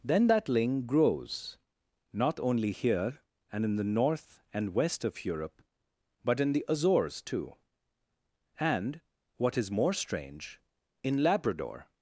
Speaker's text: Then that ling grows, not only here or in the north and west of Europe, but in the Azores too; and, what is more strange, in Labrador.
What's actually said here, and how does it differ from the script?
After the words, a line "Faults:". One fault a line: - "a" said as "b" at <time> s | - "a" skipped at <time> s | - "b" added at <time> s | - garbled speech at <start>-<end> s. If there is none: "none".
Then that ling grows, not only here and in the north and west of Europe, but in the Azores too; and, what is more strange, in Labrador.
Faults:
- "or" said as "and" at 3.5 s